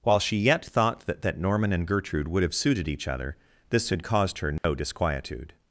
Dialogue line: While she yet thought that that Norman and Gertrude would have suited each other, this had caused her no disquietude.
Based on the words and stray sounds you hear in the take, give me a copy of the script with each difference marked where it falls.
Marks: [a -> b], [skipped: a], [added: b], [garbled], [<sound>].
While she yet thought that that Norman and Gertrude would have suited each other, this had caused her no [dropout] disquietude.